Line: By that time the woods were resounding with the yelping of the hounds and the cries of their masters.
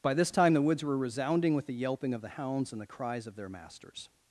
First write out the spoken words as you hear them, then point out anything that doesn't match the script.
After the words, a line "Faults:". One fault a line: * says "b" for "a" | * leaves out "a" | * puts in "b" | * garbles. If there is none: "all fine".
By this time the woods were resounding with the yelping of the hounds and the cries of their masters.
Faults:
* says "this" for "that"